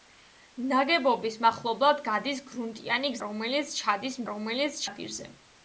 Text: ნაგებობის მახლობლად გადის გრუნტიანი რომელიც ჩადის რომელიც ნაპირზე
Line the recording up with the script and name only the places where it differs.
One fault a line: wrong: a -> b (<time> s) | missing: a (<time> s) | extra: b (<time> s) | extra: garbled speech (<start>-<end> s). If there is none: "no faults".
no faults